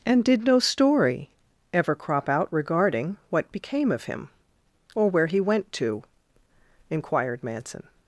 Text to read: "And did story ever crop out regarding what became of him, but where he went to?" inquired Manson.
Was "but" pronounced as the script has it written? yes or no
no